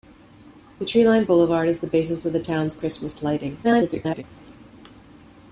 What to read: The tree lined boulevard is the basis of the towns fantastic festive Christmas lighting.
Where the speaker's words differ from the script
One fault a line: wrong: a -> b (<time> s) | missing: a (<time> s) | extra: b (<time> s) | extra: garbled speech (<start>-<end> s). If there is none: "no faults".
missing: fantastic festive (2.7 s)
extra: garbled speech (3.6-4.2 s)